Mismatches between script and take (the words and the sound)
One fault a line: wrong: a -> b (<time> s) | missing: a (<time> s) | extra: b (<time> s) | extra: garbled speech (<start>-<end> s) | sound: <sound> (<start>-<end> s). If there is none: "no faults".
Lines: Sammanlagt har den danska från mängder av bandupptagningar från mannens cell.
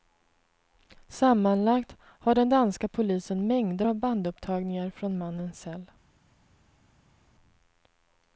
wrong: från -> polisen (2.9 s)